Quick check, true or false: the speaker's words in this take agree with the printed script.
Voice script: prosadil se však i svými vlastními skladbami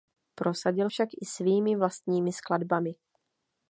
false